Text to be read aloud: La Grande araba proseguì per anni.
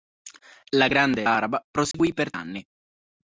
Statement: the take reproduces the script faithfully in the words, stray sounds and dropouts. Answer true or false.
false